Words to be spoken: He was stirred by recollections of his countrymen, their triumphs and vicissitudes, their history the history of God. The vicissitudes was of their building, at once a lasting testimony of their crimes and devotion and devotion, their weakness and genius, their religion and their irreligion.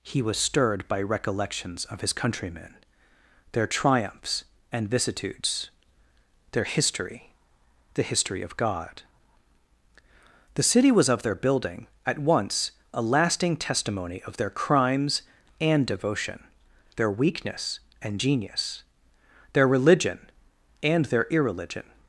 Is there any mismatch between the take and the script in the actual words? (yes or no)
yes